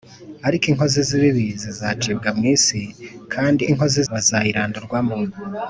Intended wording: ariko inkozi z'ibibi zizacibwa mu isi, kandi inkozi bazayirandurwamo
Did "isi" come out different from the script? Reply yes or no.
no